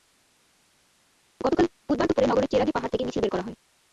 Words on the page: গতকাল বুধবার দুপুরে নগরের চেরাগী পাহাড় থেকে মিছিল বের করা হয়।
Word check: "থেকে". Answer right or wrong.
right